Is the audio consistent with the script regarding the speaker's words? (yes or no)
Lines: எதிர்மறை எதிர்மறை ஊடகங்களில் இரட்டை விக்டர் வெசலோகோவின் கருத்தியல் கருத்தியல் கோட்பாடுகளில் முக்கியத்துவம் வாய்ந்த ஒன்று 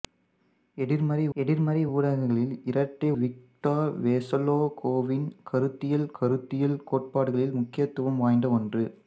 yes